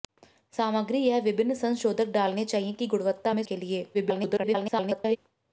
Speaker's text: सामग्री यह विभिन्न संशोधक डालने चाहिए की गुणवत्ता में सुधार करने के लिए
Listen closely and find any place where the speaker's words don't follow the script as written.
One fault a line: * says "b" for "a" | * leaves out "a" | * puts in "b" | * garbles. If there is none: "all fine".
* leaves out "सुधार करने"
* garbles